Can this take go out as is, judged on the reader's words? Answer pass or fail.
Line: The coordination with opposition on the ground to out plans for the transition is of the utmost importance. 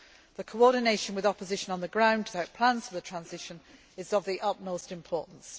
pass